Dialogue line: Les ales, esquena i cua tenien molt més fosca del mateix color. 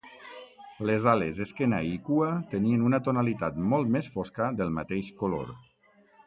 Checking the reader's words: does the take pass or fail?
fail